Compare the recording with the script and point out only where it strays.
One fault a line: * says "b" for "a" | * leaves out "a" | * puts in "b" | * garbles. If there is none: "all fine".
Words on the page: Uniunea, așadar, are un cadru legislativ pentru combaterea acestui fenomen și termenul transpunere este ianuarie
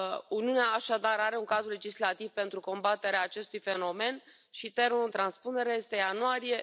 all fine